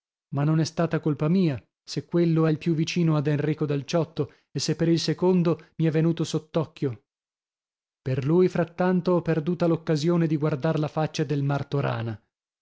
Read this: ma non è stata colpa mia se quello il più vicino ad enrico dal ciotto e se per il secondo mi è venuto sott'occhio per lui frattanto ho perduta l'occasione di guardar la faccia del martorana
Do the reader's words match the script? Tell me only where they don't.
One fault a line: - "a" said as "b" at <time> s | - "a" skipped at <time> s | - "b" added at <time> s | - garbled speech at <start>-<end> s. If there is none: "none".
none